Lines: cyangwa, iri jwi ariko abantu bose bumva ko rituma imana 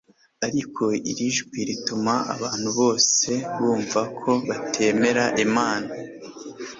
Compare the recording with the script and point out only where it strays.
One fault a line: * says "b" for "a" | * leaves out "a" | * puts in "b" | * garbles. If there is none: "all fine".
* says "ariko" for "cyangwa"
* says "rituma" for "ariko"
* says "batemera" for "rituma"